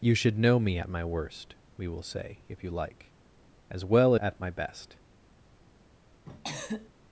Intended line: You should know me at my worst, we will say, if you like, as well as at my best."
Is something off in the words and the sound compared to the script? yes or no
yes